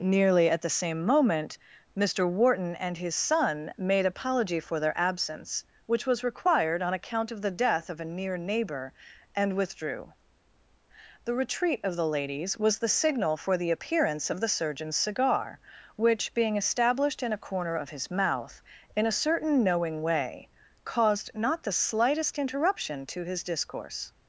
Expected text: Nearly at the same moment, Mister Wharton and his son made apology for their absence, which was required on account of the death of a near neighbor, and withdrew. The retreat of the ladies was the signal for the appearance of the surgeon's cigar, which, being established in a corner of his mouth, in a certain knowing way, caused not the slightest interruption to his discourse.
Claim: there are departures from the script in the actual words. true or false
false